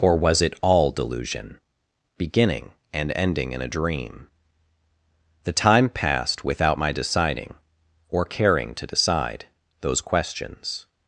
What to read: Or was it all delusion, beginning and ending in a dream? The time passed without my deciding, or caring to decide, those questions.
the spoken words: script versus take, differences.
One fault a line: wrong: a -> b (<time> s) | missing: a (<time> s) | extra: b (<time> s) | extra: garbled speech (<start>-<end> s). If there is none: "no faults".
no faults